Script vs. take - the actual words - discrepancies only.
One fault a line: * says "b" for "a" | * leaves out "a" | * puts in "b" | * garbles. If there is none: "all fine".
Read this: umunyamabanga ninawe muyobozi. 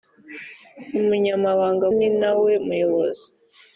all fine